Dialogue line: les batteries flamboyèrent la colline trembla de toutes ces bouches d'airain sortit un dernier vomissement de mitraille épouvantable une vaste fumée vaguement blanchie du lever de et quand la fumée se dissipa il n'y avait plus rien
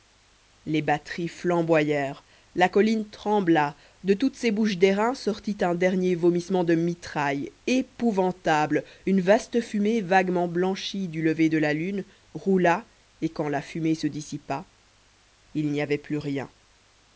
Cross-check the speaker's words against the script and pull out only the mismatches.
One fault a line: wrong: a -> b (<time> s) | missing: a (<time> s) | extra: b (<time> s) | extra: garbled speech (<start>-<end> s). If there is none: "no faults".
extra: la lune roula (11.6 s)